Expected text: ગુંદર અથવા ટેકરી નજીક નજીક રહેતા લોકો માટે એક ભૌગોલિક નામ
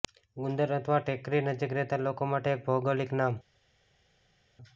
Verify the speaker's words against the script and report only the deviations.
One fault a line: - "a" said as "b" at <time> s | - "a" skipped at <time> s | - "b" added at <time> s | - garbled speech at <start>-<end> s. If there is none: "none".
- "નજીક" skipped at 1.8 s